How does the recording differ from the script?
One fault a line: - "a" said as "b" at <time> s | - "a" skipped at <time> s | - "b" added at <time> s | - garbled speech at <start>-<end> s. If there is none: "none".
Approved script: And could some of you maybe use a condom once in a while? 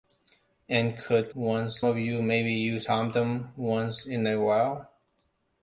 - "some" said as "once" at 1.3 s
- "a" skipped at 2.9 s